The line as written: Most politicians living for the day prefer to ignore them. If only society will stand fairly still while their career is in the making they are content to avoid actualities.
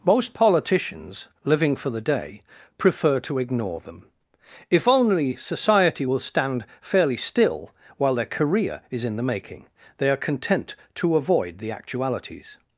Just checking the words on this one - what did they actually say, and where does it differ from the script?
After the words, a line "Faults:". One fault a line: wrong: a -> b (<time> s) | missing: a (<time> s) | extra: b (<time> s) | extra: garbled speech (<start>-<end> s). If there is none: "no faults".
Most politicians living for the day prefer to ignore them. If only society will stand fairly still while their career is in the making they are content to avoid the actualities.
Faults:
extra: the (11.6 s)